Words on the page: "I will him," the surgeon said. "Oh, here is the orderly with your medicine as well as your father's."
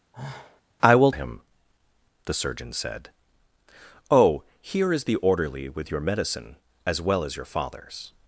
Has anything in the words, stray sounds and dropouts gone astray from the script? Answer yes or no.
yes